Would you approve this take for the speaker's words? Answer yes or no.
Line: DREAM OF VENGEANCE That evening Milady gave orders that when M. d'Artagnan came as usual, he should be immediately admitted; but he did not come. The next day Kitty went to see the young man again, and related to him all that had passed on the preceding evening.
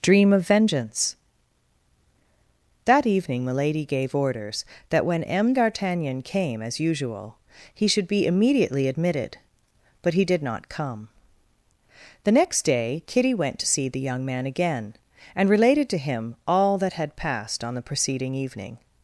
yes